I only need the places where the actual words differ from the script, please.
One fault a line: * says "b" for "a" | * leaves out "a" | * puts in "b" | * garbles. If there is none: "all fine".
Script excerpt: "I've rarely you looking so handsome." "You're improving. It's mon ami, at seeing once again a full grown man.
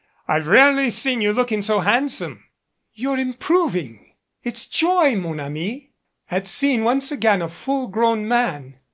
* puts in "seen"
* puts in "joy"